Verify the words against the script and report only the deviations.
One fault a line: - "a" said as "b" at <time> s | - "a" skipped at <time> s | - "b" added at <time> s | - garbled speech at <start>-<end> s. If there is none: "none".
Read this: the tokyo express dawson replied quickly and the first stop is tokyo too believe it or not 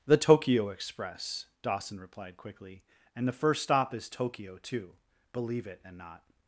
- "or" said as "and" at 5.8 s